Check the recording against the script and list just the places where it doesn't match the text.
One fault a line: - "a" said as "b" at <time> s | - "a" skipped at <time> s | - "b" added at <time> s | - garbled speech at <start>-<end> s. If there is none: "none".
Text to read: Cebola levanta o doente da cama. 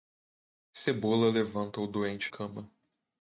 - "da" skipped at 2.3 s